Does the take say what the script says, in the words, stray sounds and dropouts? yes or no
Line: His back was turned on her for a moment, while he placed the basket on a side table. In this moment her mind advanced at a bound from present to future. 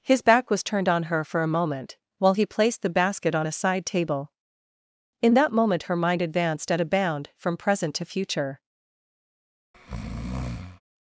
no